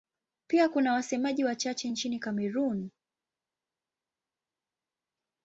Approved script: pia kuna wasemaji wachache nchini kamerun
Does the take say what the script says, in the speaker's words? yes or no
yes